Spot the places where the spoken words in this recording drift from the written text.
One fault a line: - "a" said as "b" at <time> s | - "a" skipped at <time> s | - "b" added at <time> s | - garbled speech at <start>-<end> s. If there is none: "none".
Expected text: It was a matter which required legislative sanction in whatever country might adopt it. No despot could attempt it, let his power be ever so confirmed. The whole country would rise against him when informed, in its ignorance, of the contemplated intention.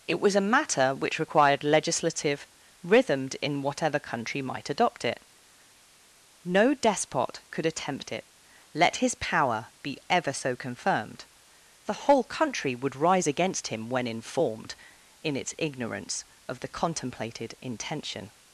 - "sanction" said as "rhythmed" at 2.8 s